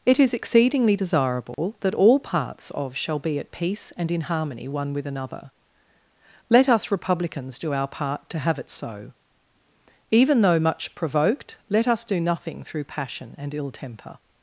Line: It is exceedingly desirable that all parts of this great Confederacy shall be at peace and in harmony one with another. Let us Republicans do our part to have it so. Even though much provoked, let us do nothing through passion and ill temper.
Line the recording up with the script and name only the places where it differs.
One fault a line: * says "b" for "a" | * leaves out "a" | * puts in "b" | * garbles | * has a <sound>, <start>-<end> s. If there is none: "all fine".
* has a dropout, 1.5-1.6 s
* leaves out "this great Confederacy"